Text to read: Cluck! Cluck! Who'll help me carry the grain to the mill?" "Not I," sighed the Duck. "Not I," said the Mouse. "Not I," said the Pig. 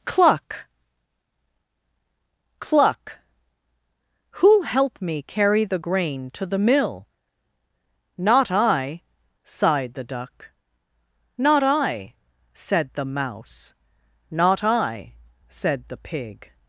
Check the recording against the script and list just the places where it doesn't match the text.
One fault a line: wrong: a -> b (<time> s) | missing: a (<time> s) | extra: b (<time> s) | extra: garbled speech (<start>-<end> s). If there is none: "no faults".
no faults